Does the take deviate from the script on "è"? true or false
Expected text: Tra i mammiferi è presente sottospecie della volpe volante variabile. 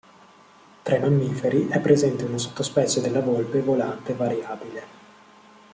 false